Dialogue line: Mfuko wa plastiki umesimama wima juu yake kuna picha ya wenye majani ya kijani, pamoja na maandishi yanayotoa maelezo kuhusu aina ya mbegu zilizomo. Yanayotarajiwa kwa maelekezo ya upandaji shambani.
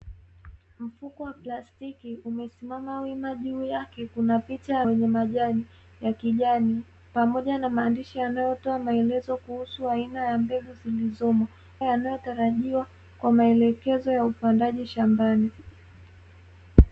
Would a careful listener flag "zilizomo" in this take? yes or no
no